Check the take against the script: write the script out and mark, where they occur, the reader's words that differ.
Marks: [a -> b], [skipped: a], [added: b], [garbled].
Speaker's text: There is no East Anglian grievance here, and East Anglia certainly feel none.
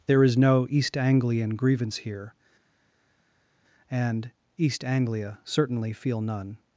There is no East Anglian grievance here, and East Anglia certainly feel none.